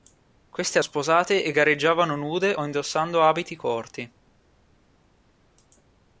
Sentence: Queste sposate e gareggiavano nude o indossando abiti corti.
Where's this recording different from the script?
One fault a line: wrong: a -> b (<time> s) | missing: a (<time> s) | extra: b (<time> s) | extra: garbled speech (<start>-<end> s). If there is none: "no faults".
no faults